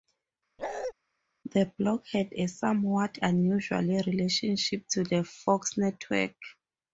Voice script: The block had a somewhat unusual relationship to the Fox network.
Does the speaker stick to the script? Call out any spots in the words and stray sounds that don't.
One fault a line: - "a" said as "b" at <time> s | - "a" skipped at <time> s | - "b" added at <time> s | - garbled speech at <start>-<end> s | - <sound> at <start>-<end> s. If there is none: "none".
- bark at 0.6-0.9 s